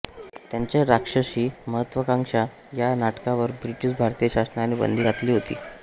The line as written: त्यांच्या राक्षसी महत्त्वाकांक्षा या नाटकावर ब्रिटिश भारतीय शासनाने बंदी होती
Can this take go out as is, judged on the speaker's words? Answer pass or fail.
fail